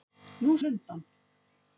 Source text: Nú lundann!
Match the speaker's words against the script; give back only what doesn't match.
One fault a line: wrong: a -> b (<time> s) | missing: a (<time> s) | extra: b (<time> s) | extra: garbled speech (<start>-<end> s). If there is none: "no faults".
no faults